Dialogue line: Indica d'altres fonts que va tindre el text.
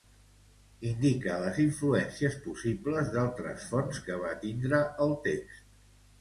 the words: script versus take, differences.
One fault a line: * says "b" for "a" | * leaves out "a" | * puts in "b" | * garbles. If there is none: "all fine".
* puts in "les influències possibles"